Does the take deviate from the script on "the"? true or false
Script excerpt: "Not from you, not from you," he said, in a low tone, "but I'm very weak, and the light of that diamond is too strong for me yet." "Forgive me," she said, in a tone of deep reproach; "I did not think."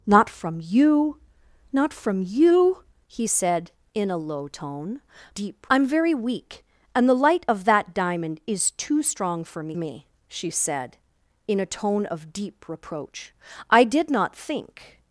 false